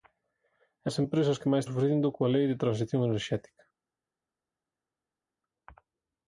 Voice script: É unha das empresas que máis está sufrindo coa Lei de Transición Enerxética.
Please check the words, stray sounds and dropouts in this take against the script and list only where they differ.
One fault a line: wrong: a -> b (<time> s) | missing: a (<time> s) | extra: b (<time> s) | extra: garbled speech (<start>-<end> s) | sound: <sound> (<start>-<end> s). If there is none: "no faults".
missing: unha (0.9 s)
missing: está (1.6 s)